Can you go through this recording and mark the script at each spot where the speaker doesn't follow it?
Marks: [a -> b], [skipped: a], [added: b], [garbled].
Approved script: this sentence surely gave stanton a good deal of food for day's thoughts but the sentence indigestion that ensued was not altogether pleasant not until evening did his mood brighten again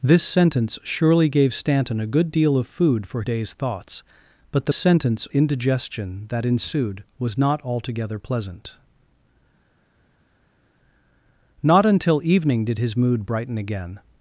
this sentence surely gave stanton a good deal of food for day's thoughts but the sentence indigestion that ensued was not altogether pleasant not until evening did his mood brighten again